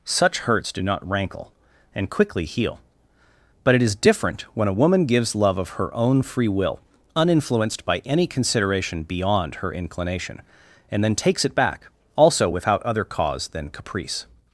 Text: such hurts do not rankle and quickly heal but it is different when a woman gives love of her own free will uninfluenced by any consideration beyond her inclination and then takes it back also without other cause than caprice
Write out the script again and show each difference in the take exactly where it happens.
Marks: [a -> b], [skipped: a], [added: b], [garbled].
such hurts do not rankle and quickly heal but it is different when a woman gives love of her own free will uninfluenced by any consideration beyond her inclination and then takes it back also without other cause than caprice